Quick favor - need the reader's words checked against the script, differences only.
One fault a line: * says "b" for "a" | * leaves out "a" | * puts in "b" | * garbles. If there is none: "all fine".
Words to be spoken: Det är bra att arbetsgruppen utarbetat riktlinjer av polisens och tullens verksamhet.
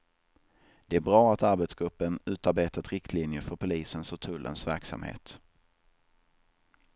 * says "för" for "av"